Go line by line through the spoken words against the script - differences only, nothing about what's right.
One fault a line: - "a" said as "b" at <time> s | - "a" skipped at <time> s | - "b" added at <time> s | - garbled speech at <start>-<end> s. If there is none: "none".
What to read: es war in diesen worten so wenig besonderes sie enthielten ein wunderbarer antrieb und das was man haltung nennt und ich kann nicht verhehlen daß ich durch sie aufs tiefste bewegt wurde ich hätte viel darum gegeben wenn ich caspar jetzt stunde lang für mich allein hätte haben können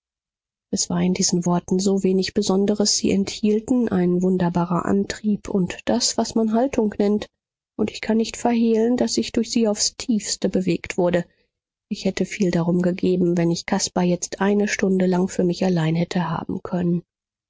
- "eine" added at 14.4 s